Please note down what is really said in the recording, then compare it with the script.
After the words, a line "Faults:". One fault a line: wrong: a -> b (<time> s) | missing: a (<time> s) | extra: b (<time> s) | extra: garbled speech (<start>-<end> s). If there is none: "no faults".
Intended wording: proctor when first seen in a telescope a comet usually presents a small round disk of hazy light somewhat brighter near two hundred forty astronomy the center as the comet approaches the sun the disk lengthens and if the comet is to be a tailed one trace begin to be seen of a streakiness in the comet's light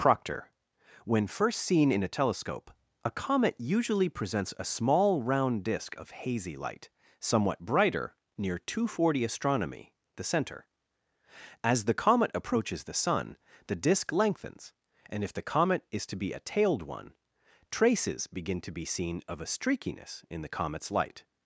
proctor when first seen in a telescope a comet usually presents a small round disk of hazy light somewhat brighter near two hundred forty astronomy the center as the comet approaches the sun the disk lengthens and if the comet is to be a tailed one traces begin to be seen of a streakiness in the comet's light
Faults:
wrong: trace -> traces (17.7 s)